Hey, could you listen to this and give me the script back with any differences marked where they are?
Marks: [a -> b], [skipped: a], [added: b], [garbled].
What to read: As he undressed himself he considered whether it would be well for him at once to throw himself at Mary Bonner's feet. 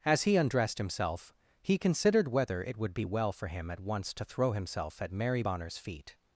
As he undressed himself he considered whether it would be well for him at once to throw himself at Mary Bonner's feet.